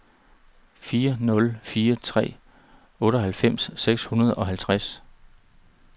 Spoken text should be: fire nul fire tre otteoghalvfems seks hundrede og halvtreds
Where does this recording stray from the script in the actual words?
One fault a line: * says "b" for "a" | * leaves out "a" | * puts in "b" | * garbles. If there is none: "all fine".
all fine